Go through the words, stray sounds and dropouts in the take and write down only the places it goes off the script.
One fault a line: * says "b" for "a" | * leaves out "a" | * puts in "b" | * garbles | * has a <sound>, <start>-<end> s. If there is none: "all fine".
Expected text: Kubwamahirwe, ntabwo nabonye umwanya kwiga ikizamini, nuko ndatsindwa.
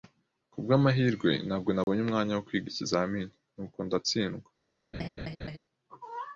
* has a dropout, 1.8-1.9 s
* puts in "wo"
* has a laugh, 4.9-5.6 s